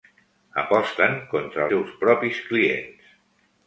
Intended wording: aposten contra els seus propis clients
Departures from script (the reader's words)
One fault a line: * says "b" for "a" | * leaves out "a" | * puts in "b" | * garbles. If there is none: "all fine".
* leaves out "els"